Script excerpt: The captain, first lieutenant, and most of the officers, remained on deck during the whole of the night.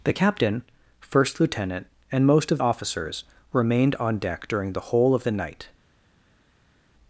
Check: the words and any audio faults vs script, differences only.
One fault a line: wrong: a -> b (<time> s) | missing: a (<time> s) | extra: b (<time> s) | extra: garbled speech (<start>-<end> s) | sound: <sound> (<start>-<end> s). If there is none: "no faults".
missing: the (2.6 s)